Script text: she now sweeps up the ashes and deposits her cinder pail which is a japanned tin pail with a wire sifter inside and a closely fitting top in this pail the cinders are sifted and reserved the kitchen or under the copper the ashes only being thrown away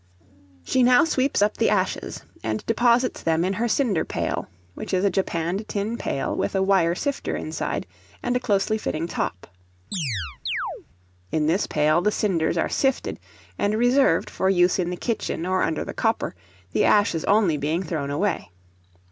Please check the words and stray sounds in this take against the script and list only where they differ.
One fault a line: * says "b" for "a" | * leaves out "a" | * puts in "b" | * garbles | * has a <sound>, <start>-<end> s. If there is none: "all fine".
* puts in "them in"
* has a chirp, 9.9-10.9 s
* puts in "for use in"